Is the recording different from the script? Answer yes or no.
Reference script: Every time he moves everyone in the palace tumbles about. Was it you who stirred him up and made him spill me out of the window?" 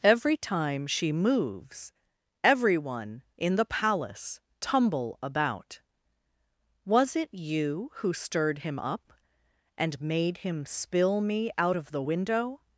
yes